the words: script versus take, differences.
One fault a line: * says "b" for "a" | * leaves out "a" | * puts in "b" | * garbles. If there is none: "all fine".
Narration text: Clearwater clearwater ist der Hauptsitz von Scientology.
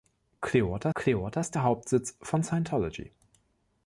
all fine